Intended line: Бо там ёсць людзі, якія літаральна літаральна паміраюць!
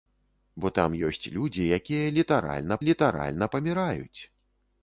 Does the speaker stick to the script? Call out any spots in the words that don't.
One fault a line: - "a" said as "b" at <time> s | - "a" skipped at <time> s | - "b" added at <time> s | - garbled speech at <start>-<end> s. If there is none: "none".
none